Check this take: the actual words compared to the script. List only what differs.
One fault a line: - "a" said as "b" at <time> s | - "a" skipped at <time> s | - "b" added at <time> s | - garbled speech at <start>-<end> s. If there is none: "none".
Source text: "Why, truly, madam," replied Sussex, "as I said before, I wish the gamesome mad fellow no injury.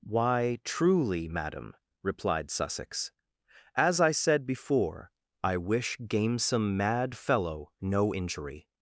- "the" skipped at 6.0 s